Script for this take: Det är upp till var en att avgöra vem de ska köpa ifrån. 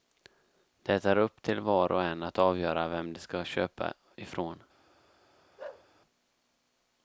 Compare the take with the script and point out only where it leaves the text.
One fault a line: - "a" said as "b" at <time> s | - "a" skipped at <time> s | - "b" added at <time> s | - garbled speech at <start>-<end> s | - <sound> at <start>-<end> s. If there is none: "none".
- "och" added at 1.9 s
- bark at 5.6-5.9 s